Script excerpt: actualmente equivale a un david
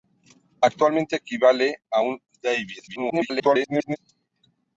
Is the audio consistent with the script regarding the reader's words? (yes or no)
no